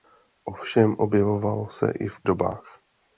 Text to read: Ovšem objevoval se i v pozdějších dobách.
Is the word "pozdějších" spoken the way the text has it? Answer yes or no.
no